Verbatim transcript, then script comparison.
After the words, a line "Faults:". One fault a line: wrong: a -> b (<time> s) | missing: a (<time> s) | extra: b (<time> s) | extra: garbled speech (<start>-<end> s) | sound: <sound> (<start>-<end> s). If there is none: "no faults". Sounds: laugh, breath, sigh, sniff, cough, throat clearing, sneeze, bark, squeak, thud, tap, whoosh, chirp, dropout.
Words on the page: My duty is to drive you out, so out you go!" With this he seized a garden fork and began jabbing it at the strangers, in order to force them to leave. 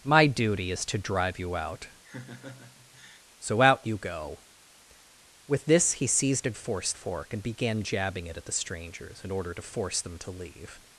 My duty is to drive you out, so out you go!" With this he seized a force fork and began jabbing it at the strangers, in order to force them to leave.
Faults:
sound: laugh (2.0-3.2 s)
wrong: garden -> force (6.5 s)